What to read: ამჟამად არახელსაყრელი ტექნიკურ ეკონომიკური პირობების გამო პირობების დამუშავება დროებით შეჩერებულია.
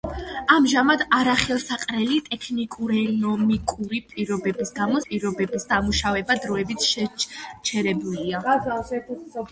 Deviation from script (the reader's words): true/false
false